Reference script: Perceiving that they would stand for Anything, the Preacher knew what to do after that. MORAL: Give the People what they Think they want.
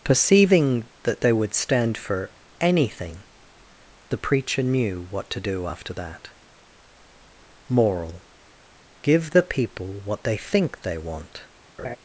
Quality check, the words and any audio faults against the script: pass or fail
fail